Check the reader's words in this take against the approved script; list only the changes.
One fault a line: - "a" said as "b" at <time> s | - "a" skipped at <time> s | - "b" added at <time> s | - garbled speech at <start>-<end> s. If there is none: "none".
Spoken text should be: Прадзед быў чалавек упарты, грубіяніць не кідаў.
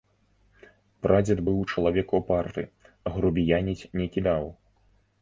none